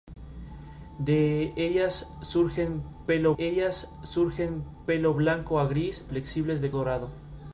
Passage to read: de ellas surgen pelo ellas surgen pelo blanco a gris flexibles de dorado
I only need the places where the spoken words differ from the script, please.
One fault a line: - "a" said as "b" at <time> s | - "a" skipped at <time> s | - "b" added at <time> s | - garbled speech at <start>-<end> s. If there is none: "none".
none